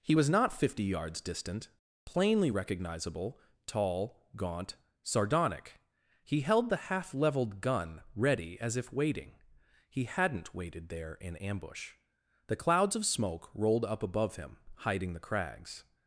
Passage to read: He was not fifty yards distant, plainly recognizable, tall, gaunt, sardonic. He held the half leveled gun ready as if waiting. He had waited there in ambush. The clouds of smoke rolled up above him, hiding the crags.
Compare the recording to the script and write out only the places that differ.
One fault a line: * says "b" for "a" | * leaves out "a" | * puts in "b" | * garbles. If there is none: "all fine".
* says "hadn't" for "had"